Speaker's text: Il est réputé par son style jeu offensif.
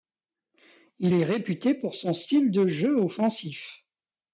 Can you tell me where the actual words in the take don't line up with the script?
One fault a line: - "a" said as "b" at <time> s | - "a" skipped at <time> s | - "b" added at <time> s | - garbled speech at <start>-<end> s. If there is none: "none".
- "par" said as "pour" at 1.7 s
- "de" added at 2.5 s